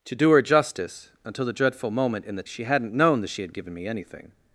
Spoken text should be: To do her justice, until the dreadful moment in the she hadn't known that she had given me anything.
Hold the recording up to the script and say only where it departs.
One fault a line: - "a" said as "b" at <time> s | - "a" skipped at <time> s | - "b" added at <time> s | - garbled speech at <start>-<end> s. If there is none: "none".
none